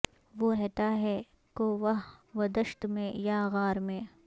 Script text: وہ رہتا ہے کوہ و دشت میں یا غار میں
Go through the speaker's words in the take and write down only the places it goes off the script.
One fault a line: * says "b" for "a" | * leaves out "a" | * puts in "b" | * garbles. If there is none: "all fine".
all fine